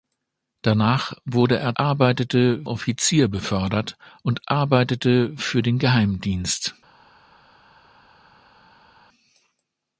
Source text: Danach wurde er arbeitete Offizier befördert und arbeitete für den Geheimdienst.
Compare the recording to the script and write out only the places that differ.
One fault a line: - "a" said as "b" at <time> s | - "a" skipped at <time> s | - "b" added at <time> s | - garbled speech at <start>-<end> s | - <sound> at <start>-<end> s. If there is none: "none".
none